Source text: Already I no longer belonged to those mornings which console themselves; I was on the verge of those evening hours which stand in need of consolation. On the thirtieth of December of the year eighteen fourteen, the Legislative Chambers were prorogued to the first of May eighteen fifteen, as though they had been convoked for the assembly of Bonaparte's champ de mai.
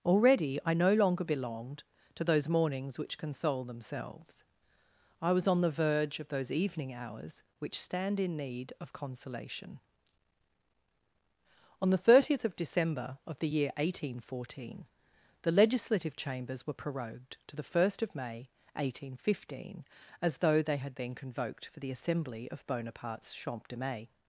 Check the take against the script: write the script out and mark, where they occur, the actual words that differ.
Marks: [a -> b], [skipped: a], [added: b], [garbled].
Already I no longer belonged to those mornings which console themselves; I was on the verge of those evening hours which stand in need of consolation. On the thirtieth of December of the year eighteen fourteen, the Legislative Chambers were prorogued to the first of May eighteen fifteen, as though they had been convoked for the assembly of Bonaparte's champ de mai.